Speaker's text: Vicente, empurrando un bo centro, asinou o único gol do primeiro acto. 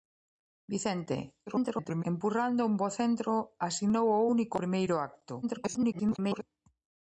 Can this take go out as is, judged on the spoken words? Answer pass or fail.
fail